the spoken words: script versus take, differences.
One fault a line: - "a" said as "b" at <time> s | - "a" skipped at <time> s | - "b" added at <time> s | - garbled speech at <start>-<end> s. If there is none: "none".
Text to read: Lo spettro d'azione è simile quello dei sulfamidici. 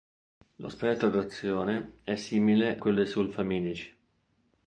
none